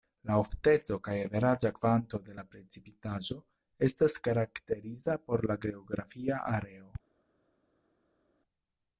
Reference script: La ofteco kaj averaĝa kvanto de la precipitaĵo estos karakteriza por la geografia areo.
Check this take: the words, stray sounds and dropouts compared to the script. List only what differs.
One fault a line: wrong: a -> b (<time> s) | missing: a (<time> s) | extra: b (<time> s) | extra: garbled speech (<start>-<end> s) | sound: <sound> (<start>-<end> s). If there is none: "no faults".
wrong: estos -> estas (3.9 s)